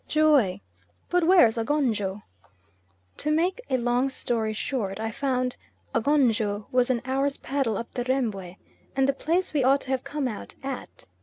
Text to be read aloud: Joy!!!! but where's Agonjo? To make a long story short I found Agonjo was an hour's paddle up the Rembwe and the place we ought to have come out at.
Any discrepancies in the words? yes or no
no